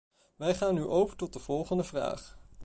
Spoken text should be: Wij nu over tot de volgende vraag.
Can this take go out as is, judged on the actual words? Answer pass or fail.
fail